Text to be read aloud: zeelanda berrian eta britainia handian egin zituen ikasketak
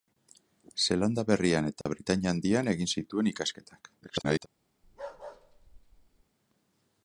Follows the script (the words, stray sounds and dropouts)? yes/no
no